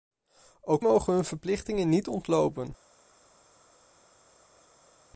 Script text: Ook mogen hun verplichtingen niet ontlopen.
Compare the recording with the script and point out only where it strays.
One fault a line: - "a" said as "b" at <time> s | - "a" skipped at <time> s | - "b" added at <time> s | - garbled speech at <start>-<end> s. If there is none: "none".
none